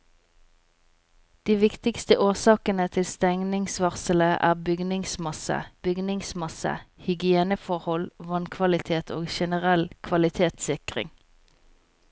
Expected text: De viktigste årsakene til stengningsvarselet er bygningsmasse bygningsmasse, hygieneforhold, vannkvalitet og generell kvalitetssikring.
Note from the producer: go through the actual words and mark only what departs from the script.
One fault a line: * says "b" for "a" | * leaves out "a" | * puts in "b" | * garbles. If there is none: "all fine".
all fine